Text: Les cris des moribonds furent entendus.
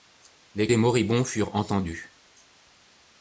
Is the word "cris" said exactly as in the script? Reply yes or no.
no